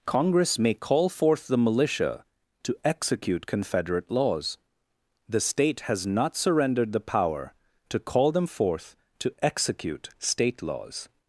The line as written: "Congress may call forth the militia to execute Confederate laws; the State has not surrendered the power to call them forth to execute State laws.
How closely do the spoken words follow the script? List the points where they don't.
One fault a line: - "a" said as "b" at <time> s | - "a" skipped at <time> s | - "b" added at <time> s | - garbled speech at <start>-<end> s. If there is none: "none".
none